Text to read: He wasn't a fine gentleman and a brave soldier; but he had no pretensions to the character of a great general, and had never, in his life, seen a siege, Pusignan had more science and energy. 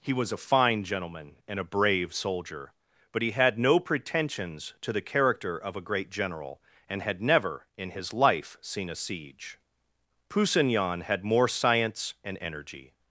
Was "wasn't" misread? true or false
true